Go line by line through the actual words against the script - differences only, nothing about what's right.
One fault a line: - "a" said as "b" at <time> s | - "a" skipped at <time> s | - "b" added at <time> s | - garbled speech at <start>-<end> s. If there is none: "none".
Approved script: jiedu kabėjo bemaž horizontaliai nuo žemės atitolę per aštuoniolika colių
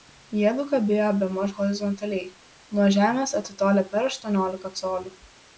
none